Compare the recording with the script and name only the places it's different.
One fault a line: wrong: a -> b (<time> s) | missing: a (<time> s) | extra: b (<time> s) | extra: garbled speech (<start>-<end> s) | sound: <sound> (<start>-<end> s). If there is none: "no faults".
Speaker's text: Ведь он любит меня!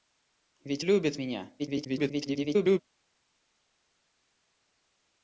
missing: он (0.8 s)
extra: garbled speech (1.6-2.8 s)